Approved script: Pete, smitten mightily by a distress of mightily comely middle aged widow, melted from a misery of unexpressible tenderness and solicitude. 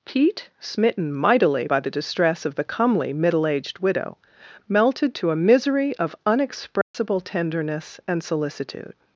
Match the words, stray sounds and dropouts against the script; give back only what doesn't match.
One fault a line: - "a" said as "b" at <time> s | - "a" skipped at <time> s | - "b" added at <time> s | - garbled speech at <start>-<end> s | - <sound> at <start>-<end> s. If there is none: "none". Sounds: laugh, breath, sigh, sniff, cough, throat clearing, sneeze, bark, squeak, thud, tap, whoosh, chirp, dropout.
- "a" said as "the" at 1.8 s
- "mightily" said as "the" at 2.5 s
- "from" said as "to" at 5.1 s
- dropout at 6.8-6.9 s